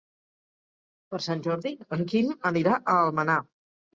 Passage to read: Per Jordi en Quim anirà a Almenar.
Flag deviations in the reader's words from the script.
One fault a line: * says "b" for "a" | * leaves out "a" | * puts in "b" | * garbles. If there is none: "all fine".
* puts in "Sant"